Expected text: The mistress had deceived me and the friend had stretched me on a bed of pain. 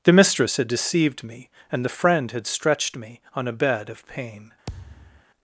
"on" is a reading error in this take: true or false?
false